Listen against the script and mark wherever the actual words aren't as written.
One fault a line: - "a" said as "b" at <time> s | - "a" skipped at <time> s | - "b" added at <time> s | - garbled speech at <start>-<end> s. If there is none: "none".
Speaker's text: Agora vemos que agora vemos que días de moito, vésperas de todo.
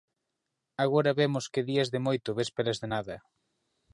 - "agora vemos que" skipped at 1.7 s
- "todo" said as "nada" at 2.9 s